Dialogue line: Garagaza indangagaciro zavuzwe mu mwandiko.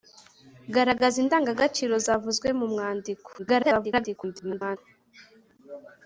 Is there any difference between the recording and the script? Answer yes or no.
yes